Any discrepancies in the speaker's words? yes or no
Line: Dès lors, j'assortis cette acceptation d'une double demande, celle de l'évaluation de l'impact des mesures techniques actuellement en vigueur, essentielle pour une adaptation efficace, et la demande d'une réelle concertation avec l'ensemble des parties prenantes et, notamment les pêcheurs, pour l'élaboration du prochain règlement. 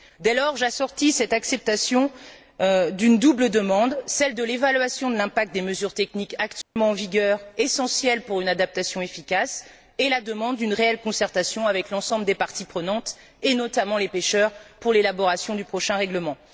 no